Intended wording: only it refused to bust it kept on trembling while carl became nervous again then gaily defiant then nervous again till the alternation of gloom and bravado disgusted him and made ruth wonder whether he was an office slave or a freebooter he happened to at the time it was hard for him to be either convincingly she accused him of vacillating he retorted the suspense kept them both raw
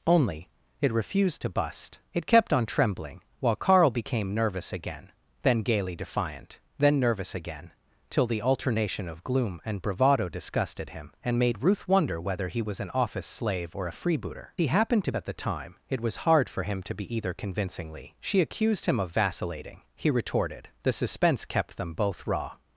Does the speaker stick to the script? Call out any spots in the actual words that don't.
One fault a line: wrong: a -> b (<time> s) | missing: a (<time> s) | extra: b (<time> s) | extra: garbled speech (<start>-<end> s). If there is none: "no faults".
no faults